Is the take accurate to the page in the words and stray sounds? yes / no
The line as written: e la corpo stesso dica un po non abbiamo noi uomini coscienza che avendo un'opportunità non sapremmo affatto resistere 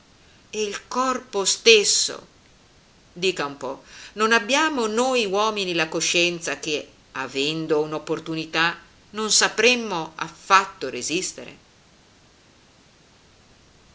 no